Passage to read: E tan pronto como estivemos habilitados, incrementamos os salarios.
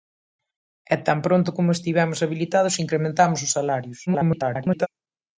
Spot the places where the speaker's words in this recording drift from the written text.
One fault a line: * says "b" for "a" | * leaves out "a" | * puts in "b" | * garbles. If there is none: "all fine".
* garbles